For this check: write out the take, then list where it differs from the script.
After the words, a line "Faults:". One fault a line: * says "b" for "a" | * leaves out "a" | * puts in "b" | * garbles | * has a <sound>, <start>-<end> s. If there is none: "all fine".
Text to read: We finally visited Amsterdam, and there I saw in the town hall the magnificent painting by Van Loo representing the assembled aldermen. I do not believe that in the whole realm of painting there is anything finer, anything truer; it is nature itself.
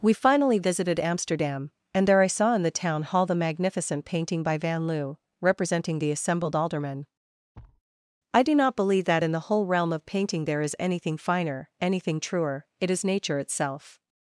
We finally visited Amsterdam, and there I saw in the town hall the magnificent painting by Van Loo representing the assembled aldermen. I do not believe that in the whole realm of painting there is anything finer, anything truer; it is nature itself.
Faults:
* has a thud, 7.5-7.8 s